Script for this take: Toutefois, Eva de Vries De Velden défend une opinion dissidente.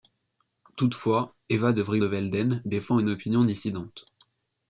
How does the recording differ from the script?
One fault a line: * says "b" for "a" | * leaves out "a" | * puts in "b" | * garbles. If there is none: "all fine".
all fine